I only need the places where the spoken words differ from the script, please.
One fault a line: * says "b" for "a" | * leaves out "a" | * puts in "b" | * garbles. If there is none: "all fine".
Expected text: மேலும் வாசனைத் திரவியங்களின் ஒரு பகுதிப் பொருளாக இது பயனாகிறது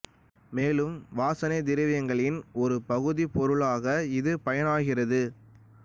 all fine